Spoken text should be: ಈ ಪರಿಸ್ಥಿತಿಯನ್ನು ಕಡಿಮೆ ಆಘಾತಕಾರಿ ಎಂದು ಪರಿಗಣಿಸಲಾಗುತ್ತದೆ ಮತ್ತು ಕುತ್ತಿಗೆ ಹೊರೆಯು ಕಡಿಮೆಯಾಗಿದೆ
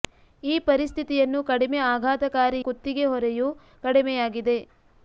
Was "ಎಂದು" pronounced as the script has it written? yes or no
no